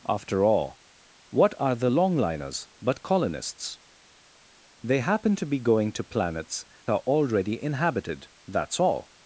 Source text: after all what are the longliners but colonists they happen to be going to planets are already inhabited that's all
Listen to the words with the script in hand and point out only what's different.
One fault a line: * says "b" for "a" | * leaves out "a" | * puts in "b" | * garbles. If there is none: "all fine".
all fine